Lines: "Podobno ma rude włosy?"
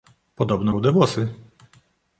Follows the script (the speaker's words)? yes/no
no